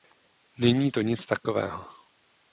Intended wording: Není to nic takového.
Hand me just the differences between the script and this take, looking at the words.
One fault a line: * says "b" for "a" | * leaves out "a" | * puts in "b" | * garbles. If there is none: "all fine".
all fine